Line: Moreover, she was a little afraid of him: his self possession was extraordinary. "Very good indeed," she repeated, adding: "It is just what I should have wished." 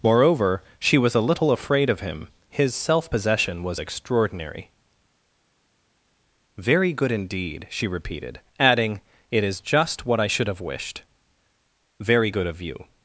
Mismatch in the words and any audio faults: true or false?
true